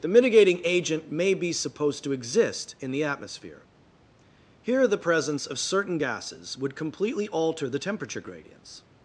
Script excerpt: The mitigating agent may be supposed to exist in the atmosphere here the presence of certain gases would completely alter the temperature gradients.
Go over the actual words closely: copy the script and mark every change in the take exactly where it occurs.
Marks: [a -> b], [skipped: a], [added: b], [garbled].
The mitigating agent may be supposed to exist in the atmosphere here the presence of certain gases would completely alter the temperature gradients.